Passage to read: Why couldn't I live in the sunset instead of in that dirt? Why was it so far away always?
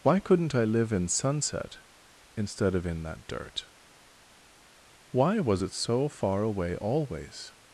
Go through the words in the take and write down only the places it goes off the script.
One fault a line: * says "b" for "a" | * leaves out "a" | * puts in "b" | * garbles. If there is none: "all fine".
* leaves out "the"